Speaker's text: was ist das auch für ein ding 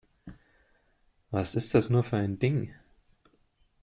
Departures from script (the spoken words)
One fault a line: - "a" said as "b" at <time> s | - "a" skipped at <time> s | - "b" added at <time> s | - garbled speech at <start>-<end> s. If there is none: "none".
- "auch" said as "nur" at 1.9 s